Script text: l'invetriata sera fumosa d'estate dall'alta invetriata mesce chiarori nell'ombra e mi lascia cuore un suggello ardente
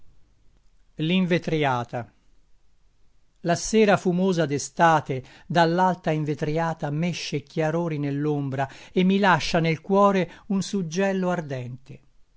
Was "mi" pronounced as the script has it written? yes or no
yes